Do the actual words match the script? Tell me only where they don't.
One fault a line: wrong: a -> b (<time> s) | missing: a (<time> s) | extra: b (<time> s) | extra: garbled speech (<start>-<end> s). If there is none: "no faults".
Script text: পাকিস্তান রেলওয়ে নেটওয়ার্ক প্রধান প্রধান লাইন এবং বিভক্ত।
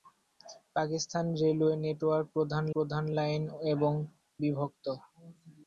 no faults